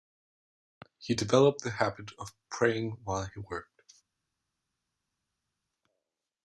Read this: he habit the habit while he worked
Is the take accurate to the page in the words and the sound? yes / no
no